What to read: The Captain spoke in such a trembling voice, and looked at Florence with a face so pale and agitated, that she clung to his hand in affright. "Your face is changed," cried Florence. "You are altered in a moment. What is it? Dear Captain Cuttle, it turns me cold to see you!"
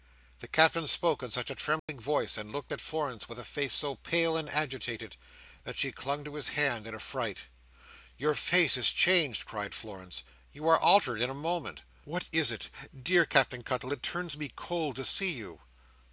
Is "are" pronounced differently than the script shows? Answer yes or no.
no